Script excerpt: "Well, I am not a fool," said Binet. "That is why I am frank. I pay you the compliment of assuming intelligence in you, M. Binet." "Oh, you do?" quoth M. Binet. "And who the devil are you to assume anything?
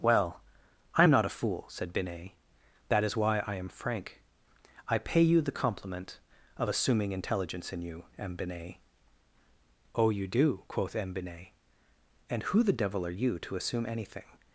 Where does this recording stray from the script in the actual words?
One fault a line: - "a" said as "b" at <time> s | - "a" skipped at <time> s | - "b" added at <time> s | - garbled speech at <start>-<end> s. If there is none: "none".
none